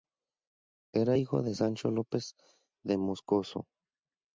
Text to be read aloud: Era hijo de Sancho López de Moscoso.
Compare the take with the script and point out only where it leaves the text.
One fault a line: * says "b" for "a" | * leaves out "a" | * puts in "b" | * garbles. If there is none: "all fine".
all fine